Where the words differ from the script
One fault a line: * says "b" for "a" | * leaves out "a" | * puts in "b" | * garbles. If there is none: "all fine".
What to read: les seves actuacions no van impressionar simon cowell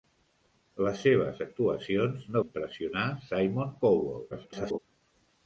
* leaves out "van"
* garbles